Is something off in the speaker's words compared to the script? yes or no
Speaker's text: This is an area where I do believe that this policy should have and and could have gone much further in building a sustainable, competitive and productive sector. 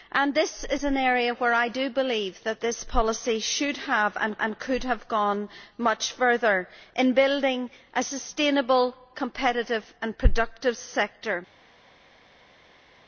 no